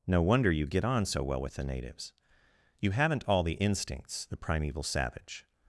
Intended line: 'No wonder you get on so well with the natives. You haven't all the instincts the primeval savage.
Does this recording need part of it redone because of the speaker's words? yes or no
no